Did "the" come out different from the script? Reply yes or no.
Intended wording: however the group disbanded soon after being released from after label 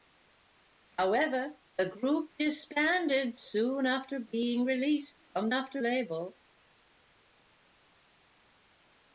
no